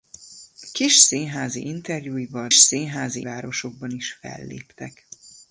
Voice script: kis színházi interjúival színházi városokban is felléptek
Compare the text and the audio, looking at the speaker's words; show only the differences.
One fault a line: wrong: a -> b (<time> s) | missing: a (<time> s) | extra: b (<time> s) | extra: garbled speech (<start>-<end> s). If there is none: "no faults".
no faults